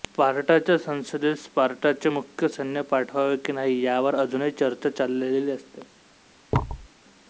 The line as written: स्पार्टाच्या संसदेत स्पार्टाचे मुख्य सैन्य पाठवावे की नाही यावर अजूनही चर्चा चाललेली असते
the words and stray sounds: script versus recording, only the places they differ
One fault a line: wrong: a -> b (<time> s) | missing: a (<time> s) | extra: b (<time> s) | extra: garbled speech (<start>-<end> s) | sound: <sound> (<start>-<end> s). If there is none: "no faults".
sound: thud (6.5-6.9 s)